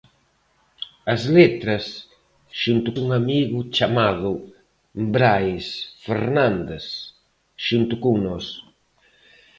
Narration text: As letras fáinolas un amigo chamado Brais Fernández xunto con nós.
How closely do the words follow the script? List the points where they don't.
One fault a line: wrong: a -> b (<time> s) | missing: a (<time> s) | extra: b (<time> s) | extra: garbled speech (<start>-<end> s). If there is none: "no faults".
wrong: fáinolas -> xunto (2.6 s)